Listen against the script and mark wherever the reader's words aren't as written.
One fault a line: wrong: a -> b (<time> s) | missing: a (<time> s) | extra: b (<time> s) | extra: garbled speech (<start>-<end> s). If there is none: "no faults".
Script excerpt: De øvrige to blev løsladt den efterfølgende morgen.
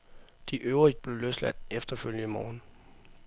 missing: to (0.9 s)
missing: den (1.7 s)